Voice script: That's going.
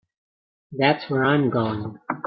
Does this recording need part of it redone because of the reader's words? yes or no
yes